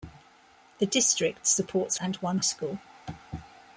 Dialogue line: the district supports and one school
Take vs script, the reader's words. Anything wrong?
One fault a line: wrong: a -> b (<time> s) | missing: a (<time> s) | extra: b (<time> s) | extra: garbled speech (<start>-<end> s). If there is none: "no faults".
no faults